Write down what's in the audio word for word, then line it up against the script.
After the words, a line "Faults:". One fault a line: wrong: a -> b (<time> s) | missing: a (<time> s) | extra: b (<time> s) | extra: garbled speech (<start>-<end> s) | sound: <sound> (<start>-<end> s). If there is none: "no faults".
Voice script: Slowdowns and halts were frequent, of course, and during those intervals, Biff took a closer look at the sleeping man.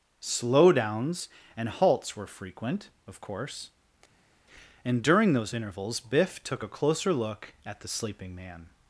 Slowdowns and halts were frequent, of course, and during those intervals, Biff took a closer look at the sleeping man.
Faults:
no faults